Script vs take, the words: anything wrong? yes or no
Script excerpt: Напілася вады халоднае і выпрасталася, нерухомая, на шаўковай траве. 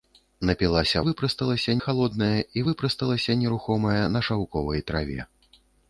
yes